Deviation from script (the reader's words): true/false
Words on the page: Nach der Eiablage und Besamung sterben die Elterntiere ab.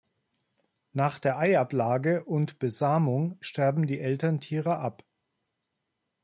false